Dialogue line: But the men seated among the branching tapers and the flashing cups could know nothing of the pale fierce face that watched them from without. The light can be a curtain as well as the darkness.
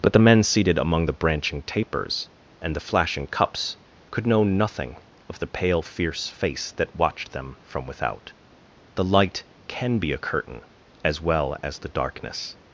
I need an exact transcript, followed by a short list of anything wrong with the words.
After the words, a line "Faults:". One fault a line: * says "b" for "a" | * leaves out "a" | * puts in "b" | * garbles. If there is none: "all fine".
But the men seated among the branching tapers and the flashing cups could know nothing of the pale fierce face that watched them from without. The light can be a curtain as well as the darkness.
Faults:
all fine